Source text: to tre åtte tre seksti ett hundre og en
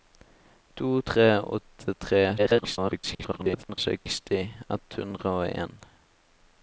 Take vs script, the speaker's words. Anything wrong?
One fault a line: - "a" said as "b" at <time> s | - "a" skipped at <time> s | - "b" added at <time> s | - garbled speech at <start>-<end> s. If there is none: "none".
- garbled speech at 2.4-3.8 s